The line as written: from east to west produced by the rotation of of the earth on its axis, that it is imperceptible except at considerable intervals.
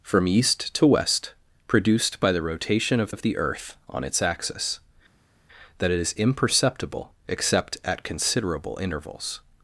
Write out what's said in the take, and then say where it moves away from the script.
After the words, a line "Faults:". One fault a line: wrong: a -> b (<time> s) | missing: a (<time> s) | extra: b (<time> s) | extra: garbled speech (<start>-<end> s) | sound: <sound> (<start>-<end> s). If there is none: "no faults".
from east to west produced by the rotation of of the earth on its axis, that it is imperceptible except at considerable intervals.
Faults:
no faults